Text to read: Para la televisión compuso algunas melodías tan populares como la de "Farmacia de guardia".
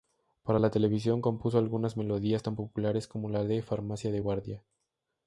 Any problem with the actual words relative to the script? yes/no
no